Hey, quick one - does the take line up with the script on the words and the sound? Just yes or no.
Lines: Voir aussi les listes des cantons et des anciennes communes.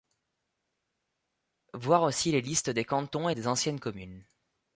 yes